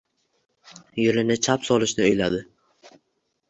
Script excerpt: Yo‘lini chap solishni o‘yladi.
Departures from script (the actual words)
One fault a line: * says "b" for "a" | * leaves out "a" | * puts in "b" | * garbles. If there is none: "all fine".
all fine